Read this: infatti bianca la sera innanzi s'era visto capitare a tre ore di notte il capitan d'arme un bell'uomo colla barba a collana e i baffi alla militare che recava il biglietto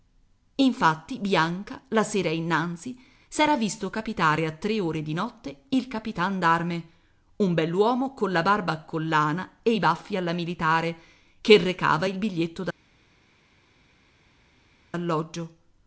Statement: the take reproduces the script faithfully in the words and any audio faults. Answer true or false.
true